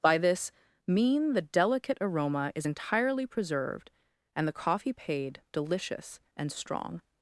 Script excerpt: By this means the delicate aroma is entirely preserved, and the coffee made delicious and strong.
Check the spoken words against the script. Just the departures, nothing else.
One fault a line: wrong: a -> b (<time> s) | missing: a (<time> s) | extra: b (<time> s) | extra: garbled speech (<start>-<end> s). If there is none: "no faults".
wrong: means -> mean (0.9 s)
wrong: made -> paid (4.9 s)